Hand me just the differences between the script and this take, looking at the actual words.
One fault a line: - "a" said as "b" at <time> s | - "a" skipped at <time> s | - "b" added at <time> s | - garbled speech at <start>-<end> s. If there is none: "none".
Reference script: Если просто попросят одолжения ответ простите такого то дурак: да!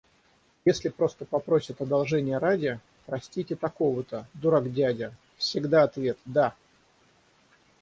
- "ответ" said as "ради" at 2.4 s
- "дядя всегда ответ" added at 4.7 s